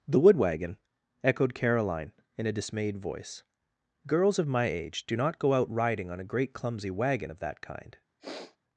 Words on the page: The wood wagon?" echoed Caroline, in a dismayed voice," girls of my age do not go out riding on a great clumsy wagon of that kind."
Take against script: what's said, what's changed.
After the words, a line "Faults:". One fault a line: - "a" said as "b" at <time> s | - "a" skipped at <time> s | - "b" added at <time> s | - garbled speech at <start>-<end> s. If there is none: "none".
The wood wagon?" echoed Caroline, in a dismayed voice," girls of my age do not go out riding on a great clumsy wagon of that kind."
Faults:
none